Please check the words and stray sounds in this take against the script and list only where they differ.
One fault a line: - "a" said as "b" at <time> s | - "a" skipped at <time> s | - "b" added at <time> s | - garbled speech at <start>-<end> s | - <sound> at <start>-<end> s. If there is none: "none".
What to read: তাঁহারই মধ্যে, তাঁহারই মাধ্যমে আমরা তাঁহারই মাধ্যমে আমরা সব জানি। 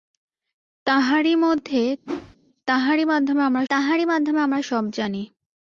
- whoosh at 2.0-2.4 s